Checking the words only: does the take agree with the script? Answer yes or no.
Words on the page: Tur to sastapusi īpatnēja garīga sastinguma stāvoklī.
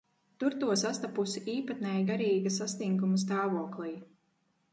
yes